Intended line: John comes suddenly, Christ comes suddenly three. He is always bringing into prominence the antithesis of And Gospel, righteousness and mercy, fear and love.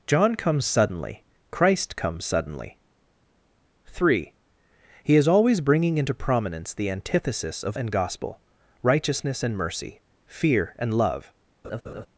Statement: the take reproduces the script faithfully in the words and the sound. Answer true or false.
false